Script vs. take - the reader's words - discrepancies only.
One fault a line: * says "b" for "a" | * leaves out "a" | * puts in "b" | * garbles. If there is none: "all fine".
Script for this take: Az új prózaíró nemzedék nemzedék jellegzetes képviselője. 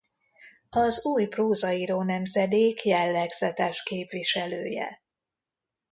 * leaves out "nemzedék"